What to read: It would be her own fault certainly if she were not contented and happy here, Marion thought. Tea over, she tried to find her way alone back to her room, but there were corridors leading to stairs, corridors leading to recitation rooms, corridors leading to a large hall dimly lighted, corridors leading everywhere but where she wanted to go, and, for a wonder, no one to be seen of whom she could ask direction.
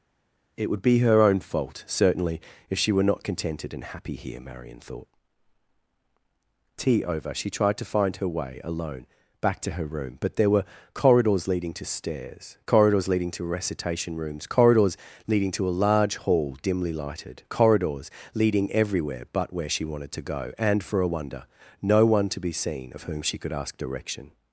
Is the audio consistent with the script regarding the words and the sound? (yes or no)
yes